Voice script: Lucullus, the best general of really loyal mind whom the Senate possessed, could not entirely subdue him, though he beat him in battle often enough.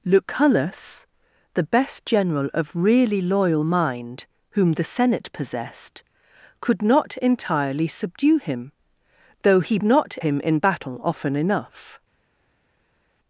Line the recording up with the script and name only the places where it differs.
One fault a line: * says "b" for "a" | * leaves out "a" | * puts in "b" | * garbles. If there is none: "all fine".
* says "not" for "beat"